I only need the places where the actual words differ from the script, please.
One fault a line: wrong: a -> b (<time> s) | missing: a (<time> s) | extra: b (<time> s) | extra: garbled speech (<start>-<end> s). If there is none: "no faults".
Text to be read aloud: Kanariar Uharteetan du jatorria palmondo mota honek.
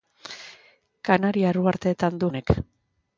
missing: jatorria palmondo mota (2.3 s)